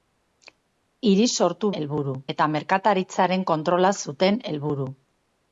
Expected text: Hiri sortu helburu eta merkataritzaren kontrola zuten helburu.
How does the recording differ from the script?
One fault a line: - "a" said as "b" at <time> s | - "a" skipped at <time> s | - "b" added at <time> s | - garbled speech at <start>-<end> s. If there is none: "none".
none